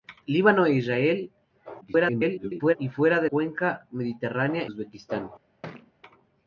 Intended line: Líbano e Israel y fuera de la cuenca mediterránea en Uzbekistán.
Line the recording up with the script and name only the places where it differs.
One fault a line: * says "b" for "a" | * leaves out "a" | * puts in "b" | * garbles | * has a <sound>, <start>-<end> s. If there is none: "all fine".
* garbles
* leaves out "la"
* leaves out "en"
* has a thud, 5.6-5.9 s